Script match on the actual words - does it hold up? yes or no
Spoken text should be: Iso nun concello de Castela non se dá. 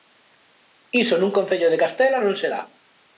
yes